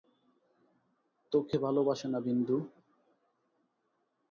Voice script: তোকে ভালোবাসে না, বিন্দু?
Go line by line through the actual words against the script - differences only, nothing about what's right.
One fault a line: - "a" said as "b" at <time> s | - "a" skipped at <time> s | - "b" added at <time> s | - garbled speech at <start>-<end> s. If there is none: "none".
none